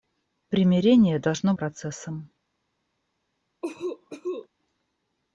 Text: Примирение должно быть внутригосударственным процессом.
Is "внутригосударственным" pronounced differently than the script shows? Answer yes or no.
yes